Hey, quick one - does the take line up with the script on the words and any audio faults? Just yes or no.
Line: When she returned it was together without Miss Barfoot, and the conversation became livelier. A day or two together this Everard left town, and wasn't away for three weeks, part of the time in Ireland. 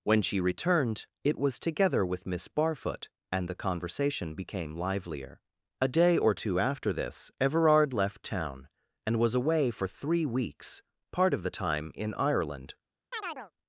no